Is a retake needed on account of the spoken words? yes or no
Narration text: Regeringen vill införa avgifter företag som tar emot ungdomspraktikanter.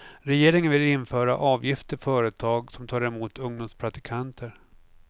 no